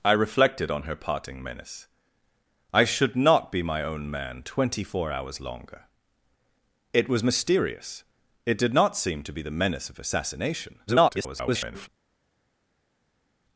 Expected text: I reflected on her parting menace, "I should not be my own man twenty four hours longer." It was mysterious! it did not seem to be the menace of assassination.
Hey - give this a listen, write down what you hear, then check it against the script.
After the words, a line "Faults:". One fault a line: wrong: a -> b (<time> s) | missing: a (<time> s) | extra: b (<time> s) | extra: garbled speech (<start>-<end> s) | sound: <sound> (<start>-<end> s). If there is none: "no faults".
I reflected on her parting menace, "I should not be my own man twenty four hours longer." It was mysterious! it did not seem to be the menace of assassination. [garbled]
Faults:
extra: garbled speech (10.9-11.9 s)